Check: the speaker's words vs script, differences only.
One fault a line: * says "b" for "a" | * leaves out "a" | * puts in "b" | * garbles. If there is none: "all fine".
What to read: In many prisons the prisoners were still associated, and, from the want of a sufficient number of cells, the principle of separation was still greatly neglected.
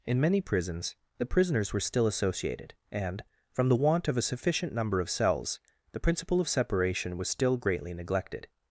all fine